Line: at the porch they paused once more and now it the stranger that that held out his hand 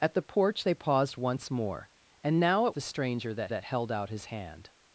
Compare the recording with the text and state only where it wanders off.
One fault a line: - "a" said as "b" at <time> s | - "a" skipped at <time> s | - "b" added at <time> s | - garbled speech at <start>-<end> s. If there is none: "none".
none